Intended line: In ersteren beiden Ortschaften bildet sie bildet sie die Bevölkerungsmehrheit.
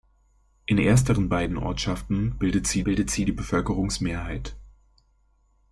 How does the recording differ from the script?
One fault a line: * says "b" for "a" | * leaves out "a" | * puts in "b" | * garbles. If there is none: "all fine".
all fine